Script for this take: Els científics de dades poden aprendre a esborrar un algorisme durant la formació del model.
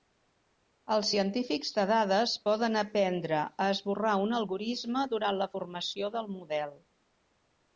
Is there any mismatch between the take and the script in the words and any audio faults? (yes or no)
no